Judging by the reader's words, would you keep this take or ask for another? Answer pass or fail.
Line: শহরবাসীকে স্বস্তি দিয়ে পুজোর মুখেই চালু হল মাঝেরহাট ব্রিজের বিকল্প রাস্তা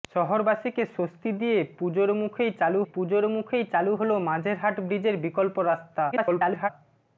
fail